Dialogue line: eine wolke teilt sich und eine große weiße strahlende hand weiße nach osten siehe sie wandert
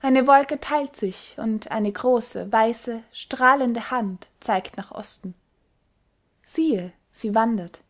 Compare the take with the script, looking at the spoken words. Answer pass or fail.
fail